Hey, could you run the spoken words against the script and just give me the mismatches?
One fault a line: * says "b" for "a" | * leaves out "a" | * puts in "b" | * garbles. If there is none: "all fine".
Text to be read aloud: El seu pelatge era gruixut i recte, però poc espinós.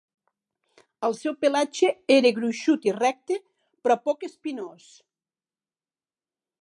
all fine